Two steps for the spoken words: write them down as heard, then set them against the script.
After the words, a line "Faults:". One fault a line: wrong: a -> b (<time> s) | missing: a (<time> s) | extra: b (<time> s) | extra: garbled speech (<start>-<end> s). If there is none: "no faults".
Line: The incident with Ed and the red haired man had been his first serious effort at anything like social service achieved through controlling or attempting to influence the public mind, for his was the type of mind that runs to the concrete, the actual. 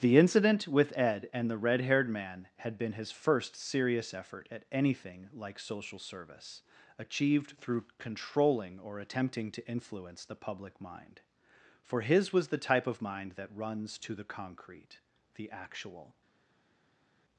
The incident with Ed and the red haired man had been his first serious effort at anything like social service achieved through controlling or attempting to influence the public mind, for his was the type of mind that runs to the concrete, the actual.
Faults:
no faults